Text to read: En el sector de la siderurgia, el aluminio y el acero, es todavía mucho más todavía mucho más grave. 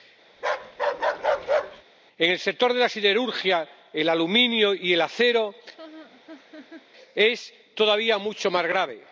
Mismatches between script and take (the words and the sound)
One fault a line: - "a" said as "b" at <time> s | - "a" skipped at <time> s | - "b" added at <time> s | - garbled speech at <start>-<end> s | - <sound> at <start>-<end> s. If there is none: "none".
- bark at 0.3-1.8 s
- laugh at 5.8-6.9 s
- "todavía mucho más" skipped at 8.7 s